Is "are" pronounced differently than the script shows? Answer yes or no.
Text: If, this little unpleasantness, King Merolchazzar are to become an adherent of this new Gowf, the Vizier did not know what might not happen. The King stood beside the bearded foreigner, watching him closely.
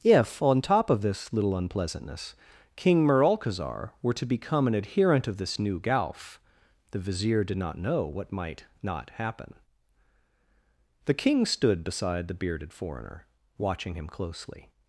yes